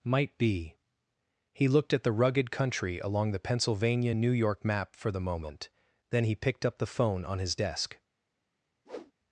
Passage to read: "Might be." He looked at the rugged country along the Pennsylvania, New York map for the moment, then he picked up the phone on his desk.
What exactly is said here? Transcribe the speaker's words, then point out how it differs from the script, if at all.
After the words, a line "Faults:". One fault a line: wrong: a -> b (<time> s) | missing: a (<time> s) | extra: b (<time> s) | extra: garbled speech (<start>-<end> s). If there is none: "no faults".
"Might be." He looked at the rugged country along the Pennsylvania, New York map for the moment, then he picked up the phone on his desk.
Faults:
no faults